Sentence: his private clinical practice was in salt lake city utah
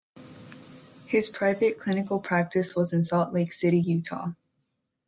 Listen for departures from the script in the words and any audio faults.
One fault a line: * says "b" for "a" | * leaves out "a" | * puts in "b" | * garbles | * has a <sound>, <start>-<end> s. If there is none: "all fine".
all fine